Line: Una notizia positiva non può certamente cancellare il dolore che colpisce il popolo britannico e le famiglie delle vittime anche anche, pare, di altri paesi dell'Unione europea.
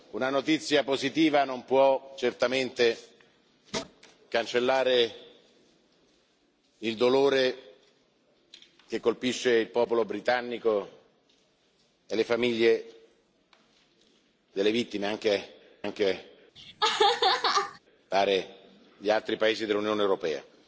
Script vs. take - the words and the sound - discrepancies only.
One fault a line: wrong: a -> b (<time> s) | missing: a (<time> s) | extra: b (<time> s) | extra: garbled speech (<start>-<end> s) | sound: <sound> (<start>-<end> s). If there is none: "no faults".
sound: laugh (16.6-17.8 s)